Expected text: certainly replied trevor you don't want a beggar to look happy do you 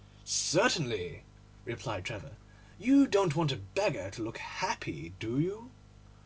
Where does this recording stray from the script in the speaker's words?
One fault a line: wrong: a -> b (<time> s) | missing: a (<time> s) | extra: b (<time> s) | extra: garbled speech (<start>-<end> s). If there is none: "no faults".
no faults